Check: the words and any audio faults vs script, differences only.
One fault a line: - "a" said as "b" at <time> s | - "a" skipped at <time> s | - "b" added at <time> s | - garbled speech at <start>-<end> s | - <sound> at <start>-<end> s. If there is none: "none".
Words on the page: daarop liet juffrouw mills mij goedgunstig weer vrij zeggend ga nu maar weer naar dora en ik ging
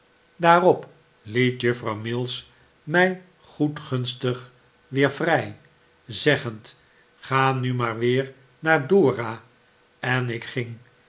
none